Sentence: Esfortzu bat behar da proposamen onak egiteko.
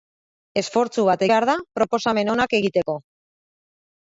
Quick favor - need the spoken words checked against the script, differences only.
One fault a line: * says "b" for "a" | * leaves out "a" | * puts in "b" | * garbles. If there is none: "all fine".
all fine